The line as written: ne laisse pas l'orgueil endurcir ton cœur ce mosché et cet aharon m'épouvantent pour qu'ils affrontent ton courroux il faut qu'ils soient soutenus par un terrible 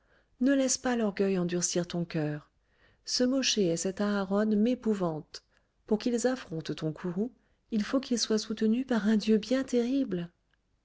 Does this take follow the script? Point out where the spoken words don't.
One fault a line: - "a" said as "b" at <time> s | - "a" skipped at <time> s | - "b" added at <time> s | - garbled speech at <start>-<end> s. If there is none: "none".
- "dieu bien" added at 9.1 s